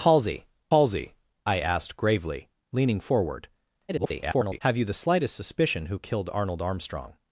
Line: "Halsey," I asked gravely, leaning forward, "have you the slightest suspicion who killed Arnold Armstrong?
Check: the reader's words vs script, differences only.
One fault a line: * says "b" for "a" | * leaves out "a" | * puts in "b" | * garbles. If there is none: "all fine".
* puts in "halsey"
* garbles